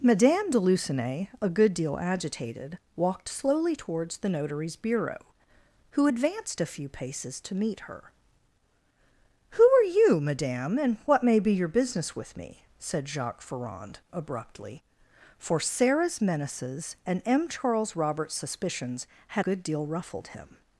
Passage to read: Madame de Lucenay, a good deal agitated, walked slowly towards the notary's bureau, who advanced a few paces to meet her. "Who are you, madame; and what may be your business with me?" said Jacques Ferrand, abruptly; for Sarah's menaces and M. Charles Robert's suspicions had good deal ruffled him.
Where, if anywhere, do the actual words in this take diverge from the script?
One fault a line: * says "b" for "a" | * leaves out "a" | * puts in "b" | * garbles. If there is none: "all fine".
all fine